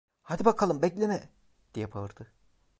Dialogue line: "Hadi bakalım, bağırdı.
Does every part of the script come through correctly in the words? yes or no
no